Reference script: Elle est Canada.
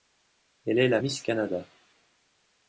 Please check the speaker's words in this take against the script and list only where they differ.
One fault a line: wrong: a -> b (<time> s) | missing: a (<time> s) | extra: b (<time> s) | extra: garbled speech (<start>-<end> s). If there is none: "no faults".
extra: la Miss (0.9 s)